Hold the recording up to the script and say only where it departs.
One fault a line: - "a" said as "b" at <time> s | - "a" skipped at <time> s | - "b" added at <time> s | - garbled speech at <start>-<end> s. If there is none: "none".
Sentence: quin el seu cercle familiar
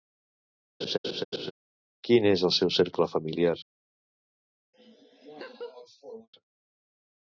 - "és" added at 2.3 s